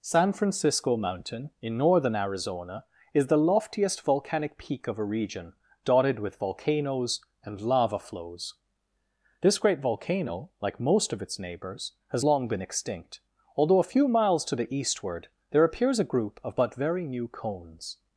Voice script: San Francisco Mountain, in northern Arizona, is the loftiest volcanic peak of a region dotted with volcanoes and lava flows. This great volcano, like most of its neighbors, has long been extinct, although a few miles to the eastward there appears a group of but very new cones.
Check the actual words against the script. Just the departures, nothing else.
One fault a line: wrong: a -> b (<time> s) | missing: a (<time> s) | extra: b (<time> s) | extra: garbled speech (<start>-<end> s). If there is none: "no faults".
no faults